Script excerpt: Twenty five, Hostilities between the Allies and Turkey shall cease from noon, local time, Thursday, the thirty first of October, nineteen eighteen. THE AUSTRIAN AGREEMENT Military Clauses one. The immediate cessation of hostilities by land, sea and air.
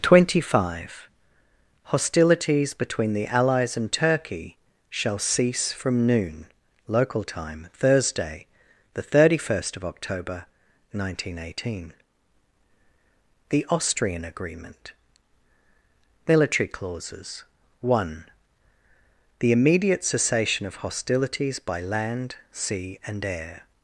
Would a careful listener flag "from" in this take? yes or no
no